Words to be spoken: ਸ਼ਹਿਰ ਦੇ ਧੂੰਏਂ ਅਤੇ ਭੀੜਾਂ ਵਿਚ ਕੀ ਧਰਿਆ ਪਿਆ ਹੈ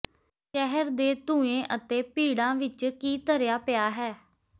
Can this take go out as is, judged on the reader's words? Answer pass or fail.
pass